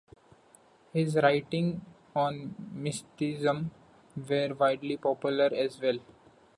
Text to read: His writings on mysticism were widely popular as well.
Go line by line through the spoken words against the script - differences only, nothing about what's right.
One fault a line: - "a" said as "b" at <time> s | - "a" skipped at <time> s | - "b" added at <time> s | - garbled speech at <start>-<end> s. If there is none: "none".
none